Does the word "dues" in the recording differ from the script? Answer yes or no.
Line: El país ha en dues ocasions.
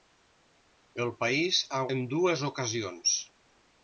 no